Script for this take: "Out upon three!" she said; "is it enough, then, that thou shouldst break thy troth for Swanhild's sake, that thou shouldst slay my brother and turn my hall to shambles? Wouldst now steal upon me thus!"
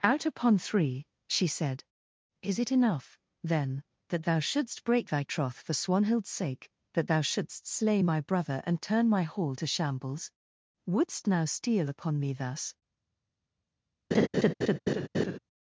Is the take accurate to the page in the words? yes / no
yes